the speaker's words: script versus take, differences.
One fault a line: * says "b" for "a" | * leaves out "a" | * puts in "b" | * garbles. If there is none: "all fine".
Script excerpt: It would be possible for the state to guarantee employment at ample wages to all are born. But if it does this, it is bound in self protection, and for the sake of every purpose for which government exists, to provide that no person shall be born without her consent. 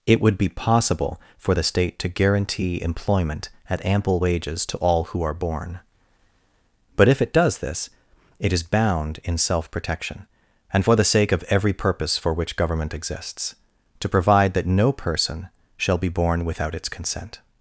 * puts in "who"
* says "its" for "her"